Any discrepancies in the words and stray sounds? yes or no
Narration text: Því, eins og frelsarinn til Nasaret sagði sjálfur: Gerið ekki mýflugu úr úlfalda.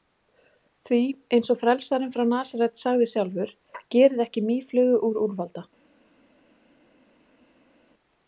yes